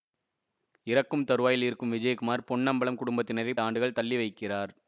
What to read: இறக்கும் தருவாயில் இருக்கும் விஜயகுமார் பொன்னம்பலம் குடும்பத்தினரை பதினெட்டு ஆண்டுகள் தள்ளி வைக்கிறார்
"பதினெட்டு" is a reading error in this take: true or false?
true